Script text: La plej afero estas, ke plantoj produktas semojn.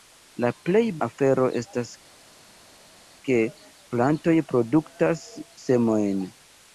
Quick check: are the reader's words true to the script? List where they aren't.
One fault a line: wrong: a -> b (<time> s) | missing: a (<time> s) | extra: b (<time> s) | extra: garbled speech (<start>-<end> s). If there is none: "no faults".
no faults